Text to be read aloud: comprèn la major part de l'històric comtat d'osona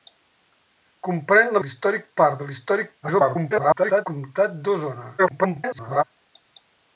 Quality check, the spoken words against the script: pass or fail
fail